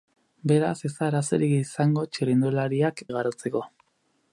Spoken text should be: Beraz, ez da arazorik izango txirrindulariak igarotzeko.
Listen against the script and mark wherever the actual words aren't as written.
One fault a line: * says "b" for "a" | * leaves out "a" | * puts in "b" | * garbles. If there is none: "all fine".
all fine